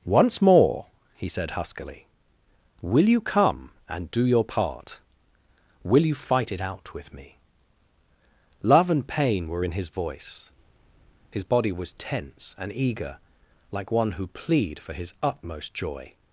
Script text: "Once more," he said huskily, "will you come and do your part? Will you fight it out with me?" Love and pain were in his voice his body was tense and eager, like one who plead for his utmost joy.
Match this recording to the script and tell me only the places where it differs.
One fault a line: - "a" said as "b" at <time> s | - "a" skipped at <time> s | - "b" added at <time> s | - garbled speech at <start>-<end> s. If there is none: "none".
none